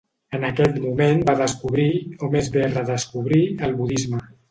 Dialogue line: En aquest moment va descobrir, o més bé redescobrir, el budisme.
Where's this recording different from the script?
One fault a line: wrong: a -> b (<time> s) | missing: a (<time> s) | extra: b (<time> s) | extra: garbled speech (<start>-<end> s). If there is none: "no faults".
no faults